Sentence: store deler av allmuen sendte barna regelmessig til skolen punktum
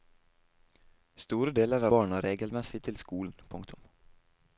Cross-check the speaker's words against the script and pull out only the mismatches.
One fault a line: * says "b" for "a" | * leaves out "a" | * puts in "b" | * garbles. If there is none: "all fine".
* leaves out "av allmuen sendte"